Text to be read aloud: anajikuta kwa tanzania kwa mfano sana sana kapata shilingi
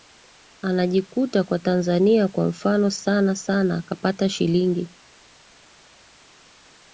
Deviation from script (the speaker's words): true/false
false